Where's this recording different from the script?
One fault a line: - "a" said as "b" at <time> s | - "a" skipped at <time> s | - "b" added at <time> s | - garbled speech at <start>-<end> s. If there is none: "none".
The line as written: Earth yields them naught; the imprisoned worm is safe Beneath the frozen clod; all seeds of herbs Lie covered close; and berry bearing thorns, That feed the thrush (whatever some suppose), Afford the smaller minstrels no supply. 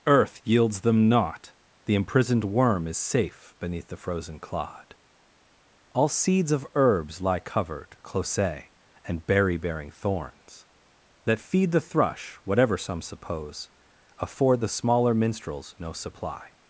none